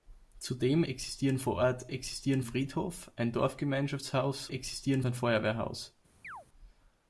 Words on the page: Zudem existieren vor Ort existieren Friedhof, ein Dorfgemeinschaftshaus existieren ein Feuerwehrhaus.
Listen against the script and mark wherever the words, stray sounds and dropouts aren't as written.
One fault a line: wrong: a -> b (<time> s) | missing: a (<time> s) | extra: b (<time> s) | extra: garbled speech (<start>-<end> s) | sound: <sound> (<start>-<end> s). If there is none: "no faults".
sound: chirp (6.2-6.5 s)